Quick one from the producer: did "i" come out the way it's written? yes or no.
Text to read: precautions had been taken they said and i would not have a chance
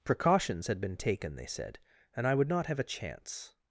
yes